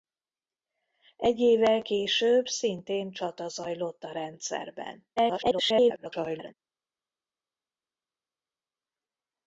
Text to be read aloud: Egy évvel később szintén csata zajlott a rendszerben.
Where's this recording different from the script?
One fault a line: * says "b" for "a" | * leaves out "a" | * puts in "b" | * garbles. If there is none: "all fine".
* garbles